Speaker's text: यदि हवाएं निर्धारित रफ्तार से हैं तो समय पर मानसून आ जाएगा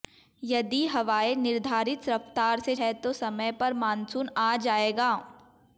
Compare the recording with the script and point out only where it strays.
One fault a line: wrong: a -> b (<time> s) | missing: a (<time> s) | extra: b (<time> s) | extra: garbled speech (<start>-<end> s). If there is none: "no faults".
no faults